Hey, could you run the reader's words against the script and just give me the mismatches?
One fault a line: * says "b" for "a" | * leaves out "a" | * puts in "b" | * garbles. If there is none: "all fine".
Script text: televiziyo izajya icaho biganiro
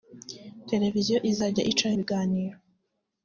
all fine